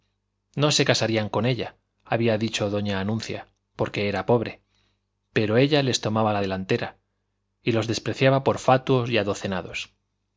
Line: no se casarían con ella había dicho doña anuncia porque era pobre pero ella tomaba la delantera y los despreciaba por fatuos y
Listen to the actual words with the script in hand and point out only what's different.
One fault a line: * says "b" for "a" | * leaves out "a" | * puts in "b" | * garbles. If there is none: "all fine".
* puts in "les"